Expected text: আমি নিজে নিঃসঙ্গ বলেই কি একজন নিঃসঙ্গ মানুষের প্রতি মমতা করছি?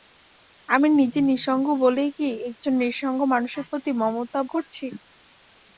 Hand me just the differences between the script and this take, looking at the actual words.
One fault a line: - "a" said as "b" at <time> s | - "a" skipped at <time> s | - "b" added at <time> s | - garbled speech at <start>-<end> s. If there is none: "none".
none